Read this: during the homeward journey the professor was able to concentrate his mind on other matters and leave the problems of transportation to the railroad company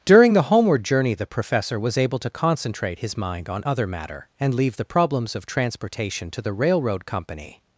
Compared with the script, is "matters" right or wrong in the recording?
wrong